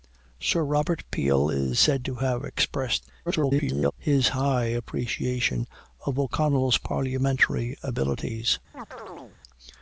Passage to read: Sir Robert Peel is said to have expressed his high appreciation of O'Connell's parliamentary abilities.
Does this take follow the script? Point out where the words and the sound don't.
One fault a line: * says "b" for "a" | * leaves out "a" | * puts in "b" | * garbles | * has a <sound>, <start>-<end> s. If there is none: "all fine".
* garbles
* has a chirp, 8.7-9.4 s